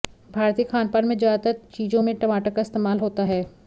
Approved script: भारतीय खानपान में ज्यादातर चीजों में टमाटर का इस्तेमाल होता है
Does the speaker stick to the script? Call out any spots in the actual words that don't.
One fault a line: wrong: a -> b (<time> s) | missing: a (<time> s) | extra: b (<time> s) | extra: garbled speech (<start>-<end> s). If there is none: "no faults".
no faults